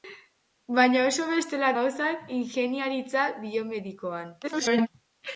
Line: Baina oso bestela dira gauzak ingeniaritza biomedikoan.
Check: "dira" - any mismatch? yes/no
yes